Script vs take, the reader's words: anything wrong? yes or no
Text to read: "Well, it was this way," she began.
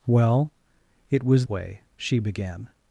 yes